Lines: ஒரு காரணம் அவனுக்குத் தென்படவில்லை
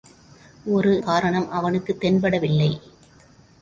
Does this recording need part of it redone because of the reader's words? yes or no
no